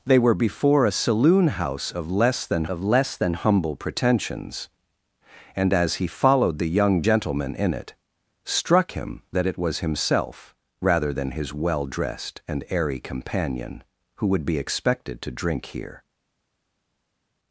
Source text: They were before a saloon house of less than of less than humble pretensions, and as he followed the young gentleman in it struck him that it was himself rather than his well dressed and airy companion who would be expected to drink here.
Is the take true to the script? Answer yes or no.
yes